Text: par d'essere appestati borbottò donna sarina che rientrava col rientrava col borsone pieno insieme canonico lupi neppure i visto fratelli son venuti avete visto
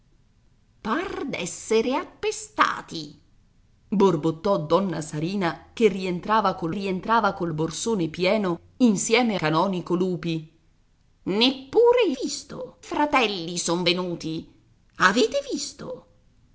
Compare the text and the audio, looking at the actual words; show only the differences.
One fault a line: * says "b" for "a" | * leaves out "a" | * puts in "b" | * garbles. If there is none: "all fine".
all fine